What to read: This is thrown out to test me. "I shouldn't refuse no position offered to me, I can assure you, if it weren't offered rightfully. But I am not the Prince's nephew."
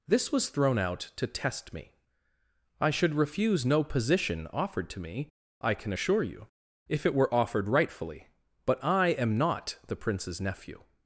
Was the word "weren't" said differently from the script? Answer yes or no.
yes